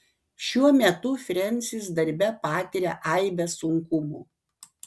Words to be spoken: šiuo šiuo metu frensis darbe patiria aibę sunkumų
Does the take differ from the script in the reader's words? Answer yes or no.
yes